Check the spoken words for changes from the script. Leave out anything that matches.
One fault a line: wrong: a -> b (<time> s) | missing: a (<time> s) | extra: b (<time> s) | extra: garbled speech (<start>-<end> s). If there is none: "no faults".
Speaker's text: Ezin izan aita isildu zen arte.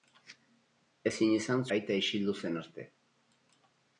no faults